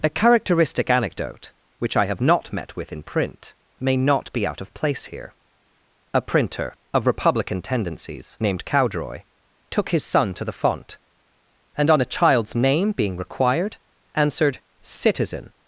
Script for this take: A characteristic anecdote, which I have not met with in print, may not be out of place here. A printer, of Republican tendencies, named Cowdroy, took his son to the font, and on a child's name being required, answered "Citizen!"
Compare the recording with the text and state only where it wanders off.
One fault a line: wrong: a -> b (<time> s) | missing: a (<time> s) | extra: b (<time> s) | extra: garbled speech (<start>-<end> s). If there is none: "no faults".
no faults